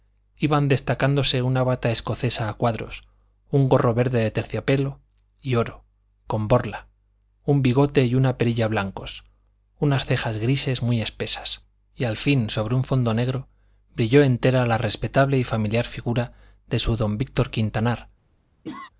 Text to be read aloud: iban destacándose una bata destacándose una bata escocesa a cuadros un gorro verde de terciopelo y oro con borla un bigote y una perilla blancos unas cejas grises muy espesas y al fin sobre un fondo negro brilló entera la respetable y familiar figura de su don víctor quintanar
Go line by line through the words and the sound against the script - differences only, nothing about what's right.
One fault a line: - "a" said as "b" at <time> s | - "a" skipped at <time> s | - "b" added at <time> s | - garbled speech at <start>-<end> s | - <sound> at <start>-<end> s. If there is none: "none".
- "destacándose una bata" skipped at 1.9 s
- cough at 18.6-18.9 s